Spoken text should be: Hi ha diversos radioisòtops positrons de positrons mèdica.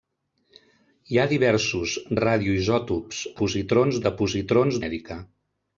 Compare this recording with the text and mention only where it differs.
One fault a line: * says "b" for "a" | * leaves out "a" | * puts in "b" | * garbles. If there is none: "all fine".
all fine